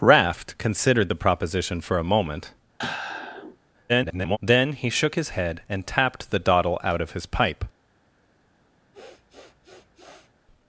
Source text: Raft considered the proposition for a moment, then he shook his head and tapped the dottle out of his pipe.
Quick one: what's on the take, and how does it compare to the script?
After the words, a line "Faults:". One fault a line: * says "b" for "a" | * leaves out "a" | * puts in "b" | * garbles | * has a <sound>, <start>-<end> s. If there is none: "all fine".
Raft considered the proposition for a moment, [garbled] then he shook his head and tapped the dottle out of his pipe.
Faults:
* has a sigh, 2.8-3.6 s
* garbles
* has a sniff, 8.9-10.3 s